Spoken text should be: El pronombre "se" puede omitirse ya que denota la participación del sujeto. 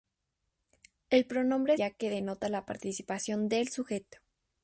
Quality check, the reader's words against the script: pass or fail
fail